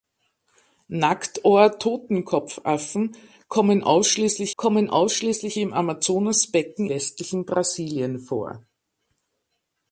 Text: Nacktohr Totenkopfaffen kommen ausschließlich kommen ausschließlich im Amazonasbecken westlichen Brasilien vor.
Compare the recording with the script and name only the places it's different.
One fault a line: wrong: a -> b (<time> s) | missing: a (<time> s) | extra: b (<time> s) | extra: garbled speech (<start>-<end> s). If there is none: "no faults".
no faults